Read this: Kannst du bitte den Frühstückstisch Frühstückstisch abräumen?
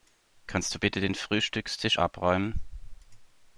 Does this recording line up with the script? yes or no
no